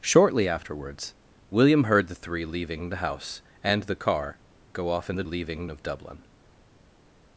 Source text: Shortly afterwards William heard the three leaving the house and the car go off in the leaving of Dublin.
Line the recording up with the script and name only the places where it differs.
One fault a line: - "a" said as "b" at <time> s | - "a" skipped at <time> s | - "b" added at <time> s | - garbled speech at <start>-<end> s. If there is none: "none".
none